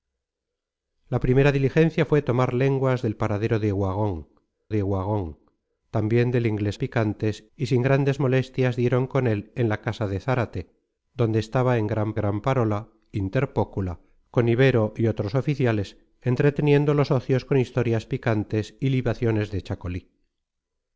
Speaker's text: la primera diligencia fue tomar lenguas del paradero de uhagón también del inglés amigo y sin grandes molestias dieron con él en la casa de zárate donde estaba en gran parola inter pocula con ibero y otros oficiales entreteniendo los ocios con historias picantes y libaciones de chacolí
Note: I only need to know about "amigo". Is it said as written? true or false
false